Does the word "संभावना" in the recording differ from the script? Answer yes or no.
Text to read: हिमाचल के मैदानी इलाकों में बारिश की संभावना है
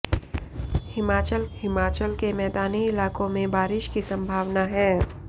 no